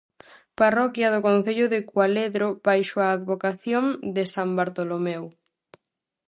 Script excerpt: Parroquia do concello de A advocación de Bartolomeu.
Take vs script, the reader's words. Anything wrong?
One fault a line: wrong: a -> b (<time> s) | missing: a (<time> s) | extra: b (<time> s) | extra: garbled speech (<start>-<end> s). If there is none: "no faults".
extra: Cualedro baixo (1.9 s)
extra: san (4.3 s)